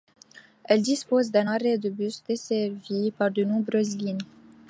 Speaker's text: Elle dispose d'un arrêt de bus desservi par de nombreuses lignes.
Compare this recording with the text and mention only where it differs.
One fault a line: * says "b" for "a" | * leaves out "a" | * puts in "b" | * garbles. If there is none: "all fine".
all fine